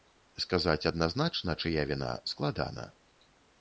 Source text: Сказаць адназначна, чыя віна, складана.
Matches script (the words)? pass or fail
pass